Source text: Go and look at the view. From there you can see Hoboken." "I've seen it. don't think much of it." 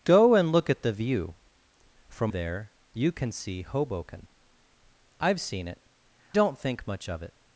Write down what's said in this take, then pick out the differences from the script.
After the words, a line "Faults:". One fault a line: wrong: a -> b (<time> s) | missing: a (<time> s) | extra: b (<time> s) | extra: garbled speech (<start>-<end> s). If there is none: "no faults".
Go and look at the view. From there you can see Hoboken." "I've seen it. don't think much of it."
Faults:
no faults